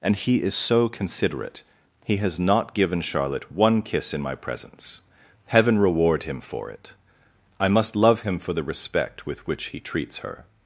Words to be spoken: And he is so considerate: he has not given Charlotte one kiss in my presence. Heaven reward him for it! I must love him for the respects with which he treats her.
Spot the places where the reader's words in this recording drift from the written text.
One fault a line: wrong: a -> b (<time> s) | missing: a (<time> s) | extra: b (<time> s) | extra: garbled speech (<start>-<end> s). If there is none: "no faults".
wrong: respects -> respect (8.6 s)